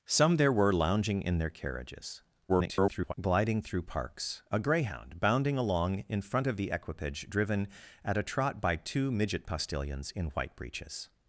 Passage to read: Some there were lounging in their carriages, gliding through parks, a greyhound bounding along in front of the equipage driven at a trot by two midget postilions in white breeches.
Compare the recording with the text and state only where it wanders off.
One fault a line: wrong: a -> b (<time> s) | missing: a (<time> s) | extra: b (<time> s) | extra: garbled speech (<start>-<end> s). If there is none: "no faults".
extra: garbled speech (2.5-3.1 s)